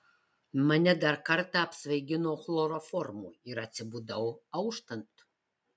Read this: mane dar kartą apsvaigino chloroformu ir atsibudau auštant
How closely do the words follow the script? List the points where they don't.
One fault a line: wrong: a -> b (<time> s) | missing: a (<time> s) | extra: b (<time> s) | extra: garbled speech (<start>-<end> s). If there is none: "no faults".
no faults